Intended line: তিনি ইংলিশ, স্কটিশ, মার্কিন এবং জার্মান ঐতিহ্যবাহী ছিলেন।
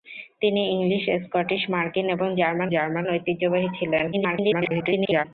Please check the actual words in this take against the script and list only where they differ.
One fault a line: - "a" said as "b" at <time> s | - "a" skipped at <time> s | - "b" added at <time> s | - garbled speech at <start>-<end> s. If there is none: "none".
- "জার্মান" added at 2.7 s
- garbled speech at 4.1-5.2 s